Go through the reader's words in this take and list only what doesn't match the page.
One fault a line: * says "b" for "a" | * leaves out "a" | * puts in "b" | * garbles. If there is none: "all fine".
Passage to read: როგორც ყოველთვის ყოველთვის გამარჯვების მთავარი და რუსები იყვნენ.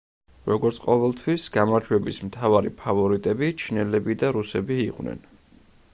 * leaves out "ყოველთვის"
* puts in "ფავორიტები ჩინელები"